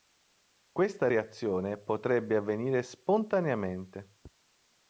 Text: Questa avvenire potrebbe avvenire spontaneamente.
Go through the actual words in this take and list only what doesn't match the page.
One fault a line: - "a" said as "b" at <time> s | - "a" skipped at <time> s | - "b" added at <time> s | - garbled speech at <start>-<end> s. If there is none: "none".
- "avvenire" said as "reazione" at 1.1 s